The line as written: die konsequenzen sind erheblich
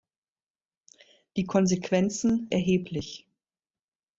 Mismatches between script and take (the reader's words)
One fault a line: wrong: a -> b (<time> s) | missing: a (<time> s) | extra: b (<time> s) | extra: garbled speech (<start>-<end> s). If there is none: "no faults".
missing: sind (2.5 s)